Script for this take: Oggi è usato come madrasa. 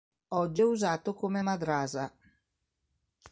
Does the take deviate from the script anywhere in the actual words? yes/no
no